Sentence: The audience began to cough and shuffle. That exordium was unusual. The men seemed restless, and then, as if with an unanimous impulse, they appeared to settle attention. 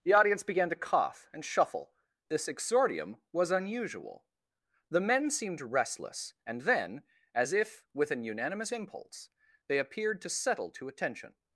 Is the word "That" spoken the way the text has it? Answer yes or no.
no